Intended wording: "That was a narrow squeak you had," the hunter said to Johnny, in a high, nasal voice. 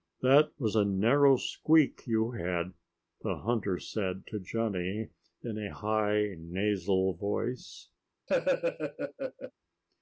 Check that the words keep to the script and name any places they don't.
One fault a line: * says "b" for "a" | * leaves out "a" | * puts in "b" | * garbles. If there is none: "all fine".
all fine